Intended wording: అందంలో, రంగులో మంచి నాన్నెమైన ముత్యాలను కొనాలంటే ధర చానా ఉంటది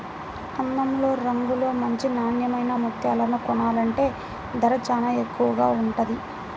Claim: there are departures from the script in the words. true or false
true